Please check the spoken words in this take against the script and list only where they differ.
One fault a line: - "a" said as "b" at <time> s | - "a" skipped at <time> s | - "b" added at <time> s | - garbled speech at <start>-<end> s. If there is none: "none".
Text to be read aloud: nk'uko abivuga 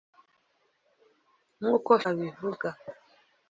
none